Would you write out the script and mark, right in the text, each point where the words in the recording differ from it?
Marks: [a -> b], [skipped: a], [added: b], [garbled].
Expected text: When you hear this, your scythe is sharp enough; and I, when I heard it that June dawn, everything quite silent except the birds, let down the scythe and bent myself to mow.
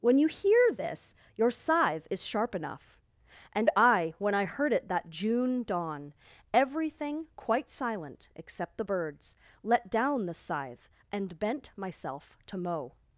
When you hear this, your scythe is sharp enough; and I, when I heard it that June dawn, everything quite silent except the birds, let down the scythe and bent myself to mow.